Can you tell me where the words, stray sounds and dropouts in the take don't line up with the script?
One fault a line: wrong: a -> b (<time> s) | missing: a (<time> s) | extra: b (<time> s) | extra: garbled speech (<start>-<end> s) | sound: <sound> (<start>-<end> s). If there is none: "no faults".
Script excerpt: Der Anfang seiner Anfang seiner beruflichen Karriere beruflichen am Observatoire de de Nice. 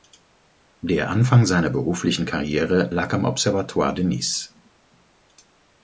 missing: Anfang seiner (1.7 s)
wrong: beruflichen -> lag (2.9 s)
missing: de (4.0 s)